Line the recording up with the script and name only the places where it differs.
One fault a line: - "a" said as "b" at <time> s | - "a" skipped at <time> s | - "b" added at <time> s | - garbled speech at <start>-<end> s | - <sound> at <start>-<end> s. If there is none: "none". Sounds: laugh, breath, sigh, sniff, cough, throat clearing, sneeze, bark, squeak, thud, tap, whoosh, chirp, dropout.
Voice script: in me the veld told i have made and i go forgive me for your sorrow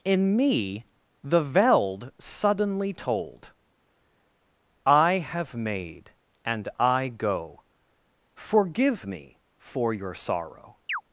- "suddenly" added at 2.2 s
- chirp at 10.9-11.0 s